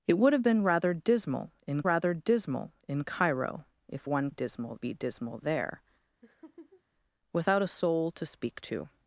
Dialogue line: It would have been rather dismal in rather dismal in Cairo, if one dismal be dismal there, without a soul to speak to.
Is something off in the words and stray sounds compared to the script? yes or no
yes